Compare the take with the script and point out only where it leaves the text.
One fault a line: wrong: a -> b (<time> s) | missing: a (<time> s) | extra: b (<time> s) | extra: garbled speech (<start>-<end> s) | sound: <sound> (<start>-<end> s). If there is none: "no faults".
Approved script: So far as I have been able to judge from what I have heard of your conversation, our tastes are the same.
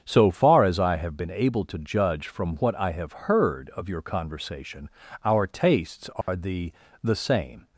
sound: dropout (6.2-6.3 s)
extra: the (7.0 s)